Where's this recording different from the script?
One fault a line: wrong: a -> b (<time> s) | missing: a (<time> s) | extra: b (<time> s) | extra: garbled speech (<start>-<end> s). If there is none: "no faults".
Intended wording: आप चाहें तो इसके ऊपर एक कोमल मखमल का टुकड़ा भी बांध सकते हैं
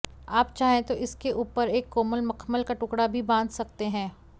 no faults